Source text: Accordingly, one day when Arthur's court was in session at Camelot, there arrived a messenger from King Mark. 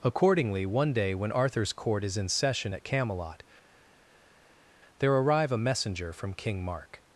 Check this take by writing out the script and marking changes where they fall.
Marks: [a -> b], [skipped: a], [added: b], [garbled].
Accordingly, one day when Arthur's court [was -> is] in session at Camelot, there [arrived -> arrive] a messenger from King Mark.